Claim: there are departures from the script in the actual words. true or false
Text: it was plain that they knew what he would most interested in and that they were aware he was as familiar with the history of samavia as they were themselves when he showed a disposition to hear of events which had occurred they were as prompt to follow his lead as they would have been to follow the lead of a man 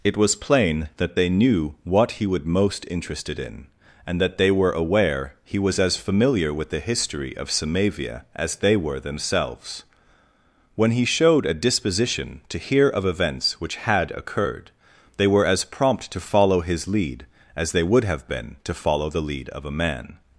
false